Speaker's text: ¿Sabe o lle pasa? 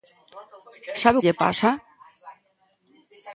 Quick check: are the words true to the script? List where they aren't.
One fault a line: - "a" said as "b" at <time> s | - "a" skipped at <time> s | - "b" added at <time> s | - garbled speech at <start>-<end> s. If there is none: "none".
none